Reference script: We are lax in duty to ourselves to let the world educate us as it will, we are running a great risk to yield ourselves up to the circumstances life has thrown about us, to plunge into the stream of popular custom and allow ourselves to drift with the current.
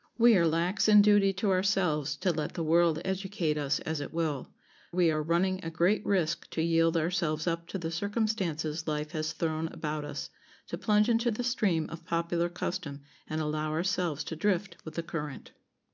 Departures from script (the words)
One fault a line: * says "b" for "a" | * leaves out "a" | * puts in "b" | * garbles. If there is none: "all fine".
all fine